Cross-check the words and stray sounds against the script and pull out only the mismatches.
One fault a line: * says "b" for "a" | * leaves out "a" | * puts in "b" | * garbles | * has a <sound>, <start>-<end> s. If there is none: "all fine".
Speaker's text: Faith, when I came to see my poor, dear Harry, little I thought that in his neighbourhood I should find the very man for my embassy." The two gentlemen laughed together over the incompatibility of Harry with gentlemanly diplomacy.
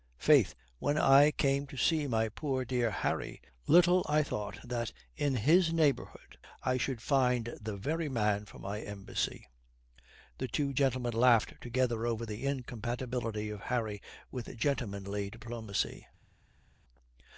all fine